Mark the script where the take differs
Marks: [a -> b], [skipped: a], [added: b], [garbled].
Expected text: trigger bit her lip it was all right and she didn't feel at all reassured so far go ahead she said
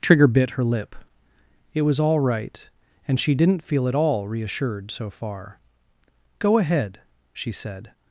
trigger bit her lip it was all right and she didn't feel at all reassured so far go ahead she said